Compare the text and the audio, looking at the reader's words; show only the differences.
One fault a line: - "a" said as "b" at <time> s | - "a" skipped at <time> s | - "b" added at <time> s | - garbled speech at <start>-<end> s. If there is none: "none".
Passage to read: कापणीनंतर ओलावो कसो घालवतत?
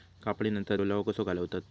none